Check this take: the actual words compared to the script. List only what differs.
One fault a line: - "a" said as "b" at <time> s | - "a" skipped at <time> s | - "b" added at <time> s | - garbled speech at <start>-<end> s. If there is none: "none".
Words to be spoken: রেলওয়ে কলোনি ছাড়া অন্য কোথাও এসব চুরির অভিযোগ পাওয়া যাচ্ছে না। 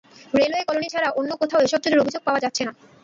none